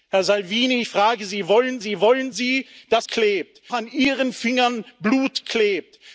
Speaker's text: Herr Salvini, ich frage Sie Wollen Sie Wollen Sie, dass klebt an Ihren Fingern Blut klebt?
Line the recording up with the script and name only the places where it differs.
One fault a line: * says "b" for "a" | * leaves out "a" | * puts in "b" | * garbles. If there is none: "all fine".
all fine